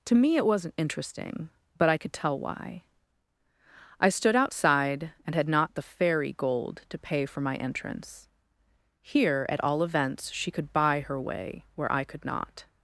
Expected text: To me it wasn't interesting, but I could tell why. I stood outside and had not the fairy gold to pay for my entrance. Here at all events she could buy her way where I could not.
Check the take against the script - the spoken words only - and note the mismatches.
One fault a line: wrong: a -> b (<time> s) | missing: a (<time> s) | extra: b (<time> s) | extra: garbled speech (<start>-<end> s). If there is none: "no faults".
no faults